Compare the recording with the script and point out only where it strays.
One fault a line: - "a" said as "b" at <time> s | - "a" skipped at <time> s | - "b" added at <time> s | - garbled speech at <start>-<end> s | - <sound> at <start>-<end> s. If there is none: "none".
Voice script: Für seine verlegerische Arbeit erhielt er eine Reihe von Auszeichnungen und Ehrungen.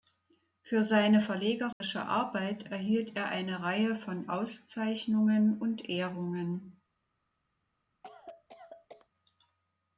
- dropout at 1.7-1.8 s
- cough at 8.0-9.1 s